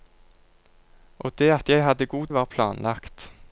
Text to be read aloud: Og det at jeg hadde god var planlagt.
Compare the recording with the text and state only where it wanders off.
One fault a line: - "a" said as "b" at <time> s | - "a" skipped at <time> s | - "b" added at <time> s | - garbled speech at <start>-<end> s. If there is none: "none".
none